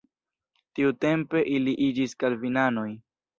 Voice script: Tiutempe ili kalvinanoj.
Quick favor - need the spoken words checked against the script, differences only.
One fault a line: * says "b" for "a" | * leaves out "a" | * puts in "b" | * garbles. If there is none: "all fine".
* puts in "iĝis"